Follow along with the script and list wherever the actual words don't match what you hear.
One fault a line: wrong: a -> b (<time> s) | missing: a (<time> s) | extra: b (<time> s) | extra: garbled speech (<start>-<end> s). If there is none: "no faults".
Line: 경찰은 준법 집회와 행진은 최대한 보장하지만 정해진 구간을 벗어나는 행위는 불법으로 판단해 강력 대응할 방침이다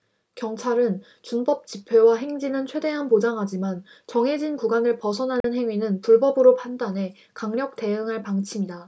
no faults